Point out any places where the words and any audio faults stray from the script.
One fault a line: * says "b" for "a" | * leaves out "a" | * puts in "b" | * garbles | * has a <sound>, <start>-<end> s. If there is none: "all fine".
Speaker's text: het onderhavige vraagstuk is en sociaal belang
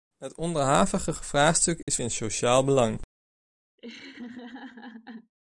* has a dropout, 1.8-1.9 s
* has a laugh, 3.8-5.3 s